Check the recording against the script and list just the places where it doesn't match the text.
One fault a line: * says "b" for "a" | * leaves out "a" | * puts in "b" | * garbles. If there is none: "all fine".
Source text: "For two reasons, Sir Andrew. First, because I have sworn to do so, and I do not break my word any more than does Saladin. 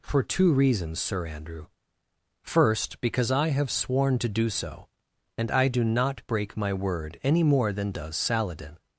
all fine